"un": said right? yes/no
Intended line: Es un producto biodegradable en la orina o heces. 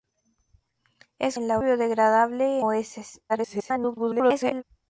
no